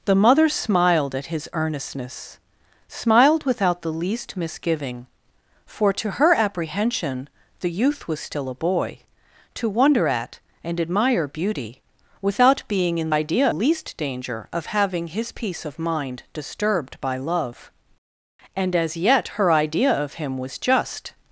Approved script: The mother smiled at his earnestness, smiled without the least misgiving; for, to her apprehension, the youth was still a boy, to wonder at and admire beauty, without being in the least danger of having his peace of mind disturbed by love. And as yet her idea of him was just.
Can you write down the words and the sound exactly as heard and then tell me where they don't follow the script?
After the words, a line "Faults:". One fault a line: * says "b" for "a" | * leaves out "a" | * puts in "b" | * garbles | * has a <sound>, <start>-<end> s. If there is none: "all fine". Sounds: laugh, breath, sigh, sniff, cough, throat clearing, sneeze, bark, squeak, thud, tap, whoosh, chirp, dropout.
The mother smiled at his earnestness, smiled without the least misgiving; for, to her apprehension, the youth was still a boy, to wonder at and admire beauty, without being in idea least danger of having his peace of mind disturbed by love. And as yet her idea of him was just.
Faults:
* says "idea" for "the"